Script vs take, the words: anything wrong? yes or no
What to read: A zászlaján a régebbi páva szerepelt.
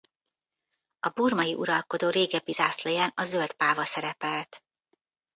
yes